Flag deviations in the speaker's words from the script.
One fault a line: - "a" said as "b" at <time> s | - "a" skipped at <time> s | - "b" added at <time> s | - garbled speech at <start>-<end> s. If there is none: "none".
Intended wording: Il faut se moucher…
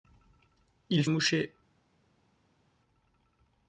- "faut se" skipped at 1.1 s